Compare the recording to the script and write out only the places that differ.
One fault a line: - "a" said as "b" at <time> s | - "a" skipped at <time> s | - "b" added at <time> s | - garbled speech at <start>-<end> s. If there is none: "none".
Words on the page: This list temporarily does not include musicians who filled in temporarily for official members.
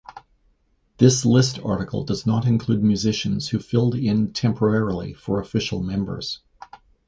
- "temporarily" said as "article" at 1.6 s